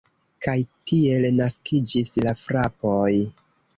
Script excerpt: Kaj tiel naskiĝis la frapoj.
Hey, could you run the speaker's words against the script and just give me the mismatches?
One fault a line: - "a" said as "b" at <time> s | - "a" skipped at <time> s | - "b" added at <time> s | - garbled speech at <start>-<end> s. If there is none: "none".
none